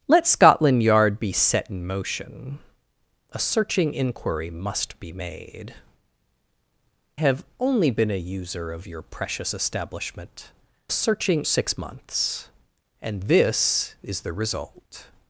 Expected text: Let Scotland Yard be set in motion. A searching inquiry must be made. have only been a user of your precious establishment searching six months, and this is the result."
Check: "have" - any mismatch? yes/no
no